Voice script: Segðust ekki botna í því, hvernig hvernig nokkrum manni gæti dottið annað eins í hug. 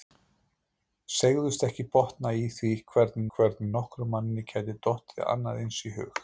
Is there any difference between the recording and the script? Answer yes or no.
no